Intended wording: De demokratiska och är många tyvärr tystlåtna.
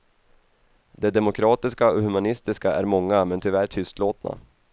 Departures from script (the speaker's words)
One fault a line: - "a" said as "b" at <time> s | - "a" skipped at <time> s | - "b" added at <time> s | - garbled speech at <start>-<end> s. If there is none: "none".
- "humanistiska" added at 2.0 s
- "men" added at 3.2 s